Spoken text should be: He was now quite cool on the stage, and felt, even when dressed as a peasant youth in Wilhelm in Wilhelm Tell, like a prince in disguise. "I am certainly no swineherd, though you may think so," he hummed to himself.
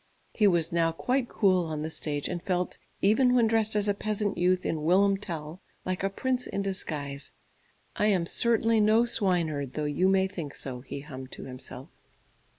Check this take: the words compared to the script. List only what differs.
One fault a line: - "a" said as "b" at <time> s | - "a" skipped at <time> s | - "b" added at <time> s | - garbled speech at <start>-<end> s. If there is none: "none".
- "in Wilhelm" skipped at 5.2 s